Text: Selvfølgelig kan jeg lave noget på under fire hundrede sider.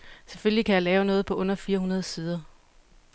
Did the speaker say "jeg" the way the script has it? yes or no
yes